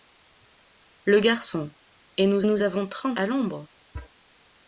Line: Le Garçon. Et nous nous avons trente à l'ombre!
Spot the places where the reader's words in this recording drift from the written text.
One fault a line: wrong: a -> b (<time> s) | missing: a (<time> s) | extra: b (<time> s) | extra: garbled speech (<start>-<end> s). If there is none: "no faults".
no faults